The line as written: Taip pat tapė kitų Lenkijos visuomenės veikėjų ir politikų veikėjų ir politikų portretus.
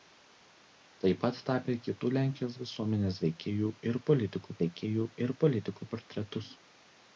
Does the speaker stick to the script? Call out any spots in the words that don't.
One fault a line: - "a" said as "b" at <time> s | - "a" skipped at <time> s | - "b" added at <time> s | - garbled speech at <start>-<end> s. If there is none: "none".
none